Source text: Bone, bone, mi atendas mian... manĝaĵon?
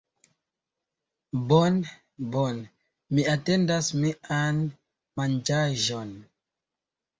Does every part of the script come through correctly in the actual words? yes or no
yes